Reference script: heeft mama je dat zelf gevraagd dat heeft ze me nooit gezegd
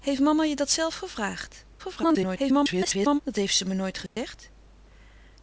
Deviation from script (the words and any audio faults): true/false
true